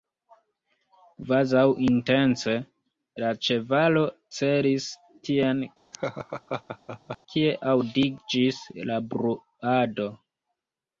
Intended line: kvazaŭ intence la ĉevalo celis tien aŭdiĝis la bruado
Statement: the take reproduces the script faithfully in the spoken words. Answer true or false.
false